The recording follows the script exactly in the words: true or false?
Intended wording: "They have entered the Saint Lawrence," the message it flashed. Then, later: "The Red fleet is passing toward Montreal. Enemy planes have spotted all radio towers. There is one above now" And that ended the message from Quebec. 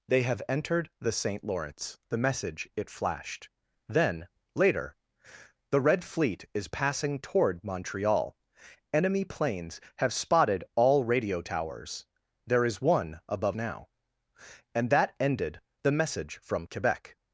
true